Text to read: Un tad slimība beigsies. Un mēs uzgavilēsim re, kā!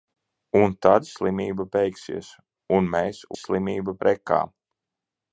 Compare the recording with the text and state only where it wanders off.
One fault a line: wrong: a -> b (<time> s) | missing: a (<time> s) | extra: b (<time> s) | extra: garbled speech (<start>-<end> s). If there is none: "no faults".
wrong: uzgavilēsim -> slimība (3.4 s)